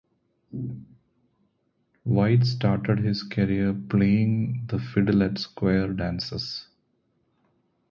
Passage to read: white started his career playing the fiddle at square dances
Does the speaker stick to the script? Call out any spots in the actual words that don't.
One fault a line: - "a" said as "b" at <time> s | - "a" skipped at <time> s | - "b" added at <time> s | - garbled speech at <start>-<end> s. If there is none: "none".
none